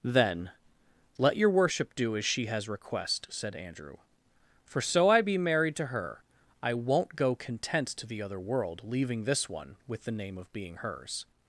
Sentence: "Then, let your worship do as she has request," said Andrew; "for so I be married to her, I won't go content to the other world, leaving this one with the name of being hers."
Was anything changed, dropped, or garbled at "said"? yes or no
no